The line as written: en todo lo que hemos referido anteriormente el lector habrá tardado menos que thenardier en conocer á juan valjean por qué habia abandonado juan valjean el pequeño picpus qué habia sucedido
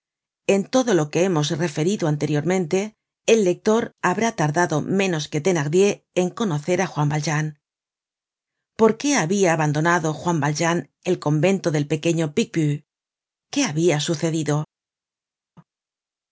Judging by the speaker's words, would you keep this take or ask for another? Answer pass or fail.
fail